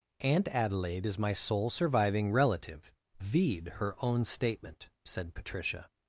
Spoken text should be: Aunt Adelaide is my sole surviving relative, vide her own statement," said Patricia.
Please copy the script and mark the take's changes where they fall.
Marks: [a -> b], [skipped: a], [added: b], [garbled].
Aunt Adelaide is my sole surviving relative, vide her own statement," said Patricia.